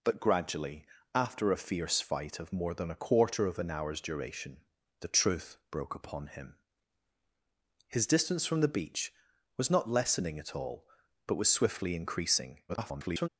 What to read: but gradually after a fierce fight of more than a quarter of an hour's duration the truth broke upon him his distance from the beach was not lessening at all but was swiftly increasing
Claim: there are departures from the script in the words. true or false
true